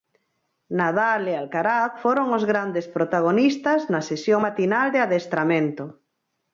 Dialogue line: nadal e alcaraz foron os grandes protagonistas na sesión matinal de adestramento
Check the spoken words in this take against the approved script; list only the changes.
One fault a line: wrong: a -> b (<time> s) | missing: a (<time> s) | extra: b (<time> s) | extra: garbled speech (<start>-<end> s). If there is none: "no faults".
no faults